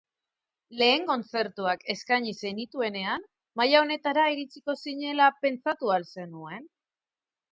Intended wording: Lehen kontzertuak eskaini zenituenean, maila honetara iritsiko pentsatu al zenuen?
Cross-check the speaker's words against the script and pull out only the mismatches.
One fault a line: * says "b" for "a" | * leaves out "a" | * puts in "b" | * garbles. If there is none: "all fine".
* puts in "zinela"